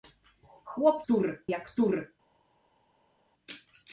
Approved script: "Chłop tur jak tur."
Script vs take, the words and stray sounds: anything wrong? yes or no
no